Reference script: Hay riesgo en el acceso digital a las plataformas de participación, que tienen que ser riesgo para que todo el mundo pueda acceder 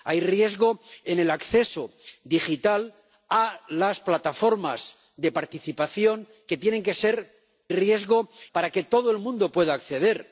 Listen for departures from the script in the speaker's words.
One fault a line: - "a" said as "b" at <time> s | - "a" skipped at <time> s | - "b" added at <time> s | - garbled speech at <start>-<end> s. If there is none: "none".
none